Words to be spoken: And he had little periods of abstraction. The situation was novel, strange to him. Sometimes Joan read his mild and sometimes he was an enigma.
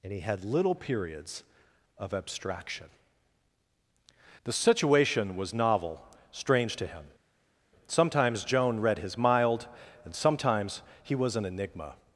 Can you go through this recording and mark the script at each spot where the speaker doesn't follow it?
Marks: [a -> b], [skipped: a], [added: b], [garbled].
And he had little periods of abstraction. The situation was novel, strange to him. Sometimes Joan read his mild and sometimes he was an enigma.